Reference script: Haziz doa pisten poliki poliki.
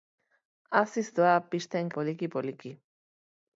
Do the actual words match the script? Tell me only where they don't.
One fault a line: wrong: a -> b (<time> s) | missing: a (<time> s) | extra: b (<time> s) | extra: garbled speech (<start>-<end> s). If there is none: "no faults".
no faults